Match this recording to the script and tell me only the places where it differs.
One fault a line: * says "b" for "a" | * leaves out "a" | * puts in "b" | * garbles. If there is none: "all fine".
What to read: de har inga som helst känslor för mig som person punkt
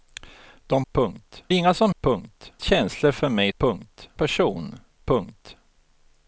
* says "punkt" for "har"
* says "punkt" for "helst"
* says "punkt" for "som"